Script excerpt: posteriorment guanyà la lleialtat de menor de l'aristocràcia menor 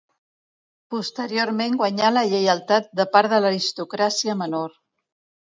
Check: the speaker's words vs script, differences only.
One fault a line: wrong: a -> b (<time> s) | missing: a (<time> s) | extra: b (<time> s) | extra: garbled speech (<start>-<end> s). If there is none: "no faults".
wrong: menor -> part (3.2 s)